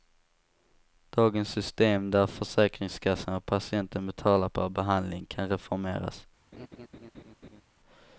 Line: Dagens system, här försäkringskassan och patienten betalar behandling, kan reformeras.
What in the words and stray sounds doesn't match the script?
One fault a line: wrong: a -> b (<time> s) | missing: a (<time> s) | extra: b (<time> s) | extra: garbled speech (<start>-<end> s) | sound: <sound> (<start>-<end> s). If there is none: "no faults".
wrong: här -> där (2.1 s)
extra: per (4.5 s)
sound: laugh (6.5-7.6 s)